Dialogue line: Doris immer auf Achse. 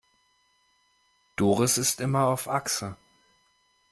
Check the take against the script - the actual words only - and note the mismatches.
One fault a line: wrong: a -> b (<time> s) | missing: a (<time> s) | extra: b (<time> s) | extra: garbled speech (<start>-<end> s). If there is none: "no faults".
extra: ist (1.8 s)